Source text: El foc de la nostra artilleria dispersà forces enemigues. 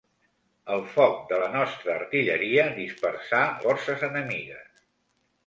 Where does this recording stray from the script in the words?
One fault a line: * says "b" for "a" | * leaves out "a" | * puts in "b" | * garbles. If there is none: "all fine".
all fine